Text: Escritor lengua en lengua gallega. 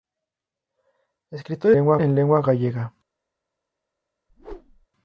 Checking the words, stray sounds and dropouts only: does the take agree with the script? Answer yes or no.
no